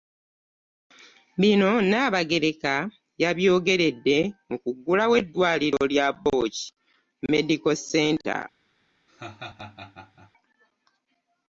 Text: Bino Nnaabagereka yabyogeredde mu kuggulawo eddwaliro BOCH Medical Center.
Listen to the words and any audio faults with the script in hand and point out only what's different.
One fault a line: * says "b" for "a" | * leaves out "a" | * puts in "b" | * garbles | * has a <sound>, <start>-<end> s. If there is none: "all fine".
* puts in "lya"
* has a laugh, 9.1-10.3 s